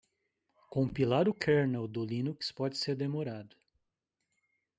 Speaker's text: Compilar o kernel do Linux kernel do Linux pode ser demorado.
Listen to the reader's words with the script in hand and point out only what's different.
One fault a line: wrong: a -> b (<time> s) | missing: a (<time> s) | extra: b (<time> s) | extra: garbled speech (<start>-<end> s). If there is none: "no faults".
missing: kernel do Linux (2.5 s)